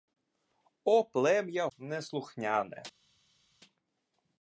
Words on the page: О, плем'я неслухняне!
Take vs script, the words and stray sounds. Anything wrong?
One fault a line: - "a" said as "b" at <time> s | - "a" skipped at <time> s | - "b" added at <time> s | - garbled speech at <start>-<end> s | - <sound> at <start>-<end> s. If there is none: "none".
none